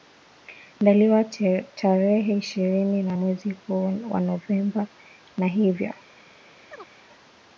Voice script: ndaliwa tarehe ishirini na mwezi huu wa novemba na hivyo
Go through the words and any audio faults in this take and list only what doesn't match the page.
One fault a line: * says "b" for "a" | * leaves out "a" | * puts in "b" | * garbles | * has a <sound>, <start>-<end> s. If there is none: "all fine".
* has a chirp, 6.7-6.9 s